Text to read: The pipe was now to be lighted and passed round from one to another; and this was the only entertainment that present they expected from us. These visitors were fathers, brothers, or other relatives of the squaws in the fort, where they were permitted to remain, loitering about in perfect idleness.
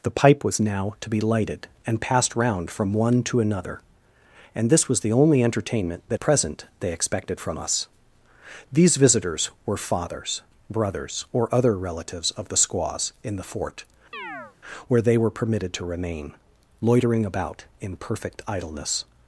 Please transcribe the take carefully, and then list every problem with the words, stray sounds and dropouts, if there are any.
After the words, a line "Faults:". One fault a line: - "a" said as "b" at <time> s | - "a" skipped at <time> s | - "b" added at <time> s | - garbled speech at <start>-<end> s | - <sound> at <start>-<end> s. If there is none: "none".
The pipe was now to be lighted and passed round from one to another; and this was the only entertainment that present they expected from us. These visitors were fathers, brothers, or other relatives of the squaws in the fort, where they were permitted to remain, loitering about in perfect idleness.
Faults:
- chirp at 14.1-14.6 s